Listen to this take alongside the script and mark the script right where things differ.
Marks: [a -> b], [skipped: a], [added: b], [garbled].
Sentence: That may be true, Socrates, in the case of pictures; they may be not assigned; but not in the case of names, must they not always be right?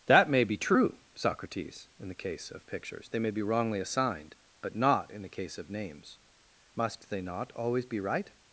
That may be true, Socrates, in the case of pictures; they may be [not -> wrongly] assigned; but not in the case of names, must they not always be right?